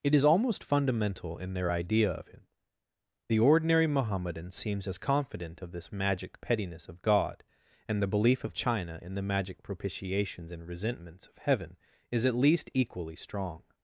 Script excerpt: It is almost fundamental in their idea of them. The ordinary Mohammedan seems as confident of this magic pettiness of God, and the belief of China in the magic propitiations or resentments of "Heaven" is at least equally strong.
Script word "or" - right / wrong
wrong